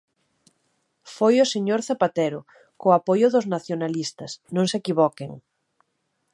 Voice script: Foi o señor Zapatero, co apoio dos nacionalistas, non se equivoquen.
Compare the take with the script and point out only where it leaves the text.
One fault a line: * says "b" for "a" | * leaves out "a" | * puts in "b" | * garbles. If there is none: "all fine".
all fine